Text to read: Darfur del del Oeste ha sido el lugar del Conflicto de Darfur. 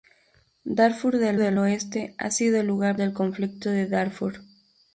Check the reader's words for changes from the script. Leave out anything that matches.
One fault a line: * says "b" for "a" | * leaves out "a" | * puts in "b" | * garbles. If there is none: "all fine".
all fine